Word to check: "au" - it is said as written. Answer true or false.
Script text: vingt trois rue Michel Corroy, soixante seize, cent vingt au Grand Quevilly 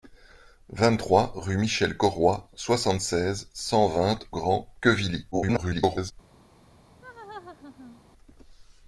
false